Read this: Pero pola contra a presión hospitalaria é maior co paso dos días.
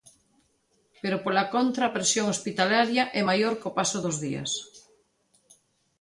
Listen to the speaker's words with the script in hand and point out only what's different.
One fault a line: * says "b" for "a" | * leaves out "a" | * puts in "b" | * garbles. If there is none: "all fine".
all fine